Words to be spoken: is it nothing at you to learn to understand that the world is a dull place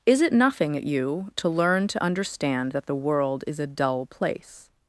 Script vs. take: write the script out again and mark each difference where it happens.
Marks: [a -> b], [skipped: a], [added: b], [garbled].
is it nothing at you to learn to understand that the world is a dull place